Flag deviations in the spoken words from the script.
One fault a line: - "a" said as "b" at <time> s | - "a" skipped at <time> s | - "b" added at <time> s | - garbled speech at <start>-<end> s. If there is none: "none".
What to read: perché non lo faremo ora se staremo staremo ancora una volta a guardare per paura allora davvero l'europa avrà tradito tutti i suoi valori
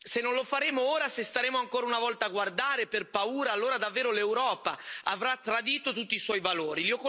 - "perché" said as "se" at 0.0 s
- "staremo" skipped at 1.6 s